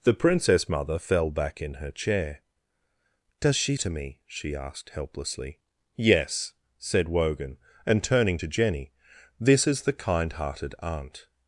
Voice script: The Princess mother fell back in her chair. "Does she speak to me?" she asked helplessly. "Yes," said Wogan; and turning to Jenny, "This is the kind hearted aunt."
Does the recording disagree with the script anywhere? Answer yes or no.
yes